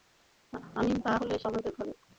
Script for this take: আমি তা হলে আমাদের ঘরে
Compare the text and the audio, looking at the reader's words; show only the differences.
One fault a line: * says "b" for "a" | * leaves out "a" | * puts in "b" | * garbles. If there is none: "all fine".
all fine